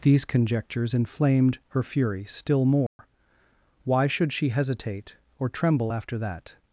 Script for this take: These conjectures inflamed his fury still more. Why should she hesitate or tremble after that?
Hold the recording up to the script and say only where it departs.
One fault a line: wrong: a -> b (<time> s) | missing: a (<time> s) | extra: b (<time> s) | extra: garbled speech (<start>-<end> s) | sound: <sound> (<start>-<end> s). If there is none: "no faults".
wrong: his -> her (1.7 s)
sound: dropout (2.9-3.0 s)